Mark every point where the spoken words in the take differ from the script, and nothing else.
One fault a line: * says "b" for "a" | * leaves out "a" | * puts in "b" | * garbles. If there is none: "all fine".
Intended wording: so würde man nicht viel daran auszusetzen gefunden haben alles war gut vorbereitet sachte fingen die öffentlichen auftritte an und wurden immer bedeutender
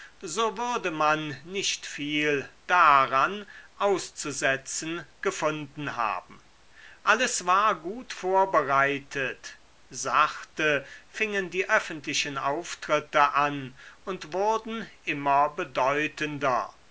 all fine